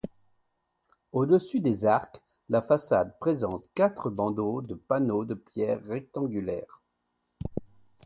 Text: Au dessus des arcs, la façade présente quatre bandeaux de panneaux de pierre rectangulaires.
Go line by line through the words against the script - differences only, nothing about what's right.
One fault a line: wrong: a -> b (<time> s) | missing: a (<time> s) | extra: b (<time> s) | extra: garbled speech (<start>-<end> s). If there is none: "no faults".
no faults